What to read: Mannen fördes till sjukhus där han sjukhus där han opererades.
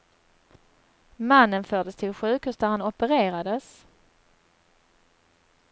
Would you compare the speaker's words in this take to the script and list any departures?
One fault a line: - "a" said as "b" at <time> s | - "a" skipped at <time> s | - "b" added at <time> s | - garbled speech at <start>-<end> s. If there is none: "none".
- "sjukhus där han" skipped at 2.8 s